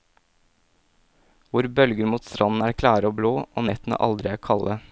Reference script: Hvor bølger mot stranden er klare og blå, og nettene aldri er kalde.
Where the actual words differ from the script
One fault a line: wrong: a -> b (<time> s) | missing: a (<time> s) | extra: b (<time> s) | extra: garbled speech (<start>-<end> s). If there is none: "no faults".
no faults